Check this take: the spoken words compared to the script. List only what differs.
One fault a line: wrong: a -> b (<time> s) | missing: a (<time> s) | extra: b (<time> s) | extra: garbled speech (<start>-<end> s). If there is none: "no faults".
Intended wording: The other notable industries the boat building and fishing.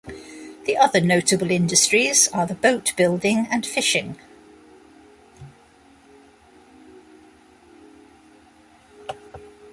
extra: are (2.3 s)